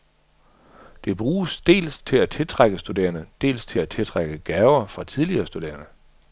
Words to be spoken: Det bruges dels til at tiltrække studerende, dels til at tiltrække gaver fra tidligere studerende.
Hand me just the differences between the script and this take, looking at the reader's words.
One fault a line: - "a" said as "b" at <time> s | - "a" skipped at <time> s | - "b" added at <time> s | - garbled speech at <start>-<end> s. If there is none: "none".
none